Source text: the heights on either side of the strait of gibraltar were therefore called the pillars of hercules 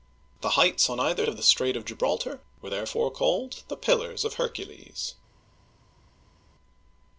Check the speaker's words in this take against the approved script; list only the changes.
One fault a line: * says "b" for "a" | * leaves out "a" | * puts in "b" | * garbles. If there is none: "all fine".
* leaves out "side"